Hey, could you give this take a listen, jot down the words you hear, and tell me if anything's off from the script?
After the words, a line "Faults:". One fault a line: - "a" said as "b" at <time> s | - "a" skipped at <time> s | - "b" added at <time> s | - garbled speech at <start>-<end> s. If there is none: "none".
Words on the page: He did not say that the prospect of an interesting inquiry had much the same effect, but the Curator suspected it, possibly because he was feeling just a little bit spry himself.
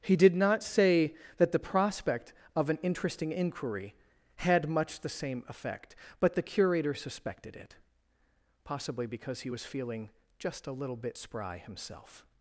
He did not say that the prospect of an interesting inquiry had much the same effect, but the Curator suspected it, possibly because he was feeling just a little bit spry himself.
Faults:
none